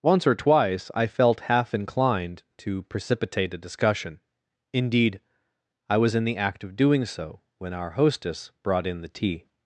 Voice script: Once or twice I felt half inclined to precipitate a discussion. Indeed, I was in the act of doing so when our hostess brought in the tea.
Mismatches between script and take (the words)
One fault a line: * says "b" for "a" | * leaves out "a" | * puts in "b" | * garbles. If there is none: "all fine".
all fine